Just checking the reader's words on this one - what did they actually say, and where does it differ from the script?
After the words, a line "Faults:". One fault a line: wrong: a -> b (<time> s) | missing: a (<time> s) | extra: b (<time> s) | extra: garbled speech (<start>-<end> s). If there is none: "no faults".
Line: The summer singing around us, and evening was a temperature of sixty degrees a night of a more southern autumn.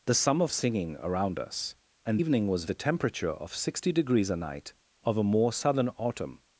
The summer singing around us, and evening was a temperature of sixty degrees a night of a more southern autumn.
Faults:
no faults